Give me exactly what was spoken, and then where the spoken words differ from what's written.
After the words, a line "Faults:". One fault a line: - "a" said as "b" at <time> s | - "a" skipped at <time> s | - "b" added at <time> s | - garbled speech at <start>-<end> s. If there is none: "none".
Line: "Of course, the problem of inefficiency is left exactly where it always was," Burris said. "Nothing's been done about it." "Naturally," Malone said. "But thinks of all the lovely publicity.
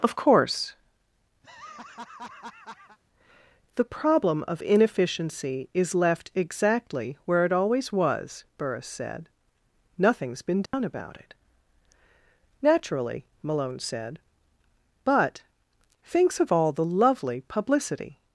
"Of course, the problem of inefficiency is left exactly where it always was," Burris said. "Nothing's been done about it." "Naturally," Malone said. "But thinks of all the lovely publicity.
Faults:
none